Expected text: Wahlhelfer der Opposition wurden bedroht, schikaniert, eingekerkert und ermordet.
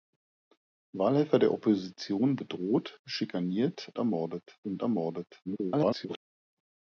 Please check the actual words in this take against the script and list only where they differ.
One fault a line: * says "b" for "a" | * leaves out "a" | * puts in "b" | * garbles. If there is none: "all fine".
* leaves out "wurden"
* says "ermordet" for "eingekerkert"
* garbles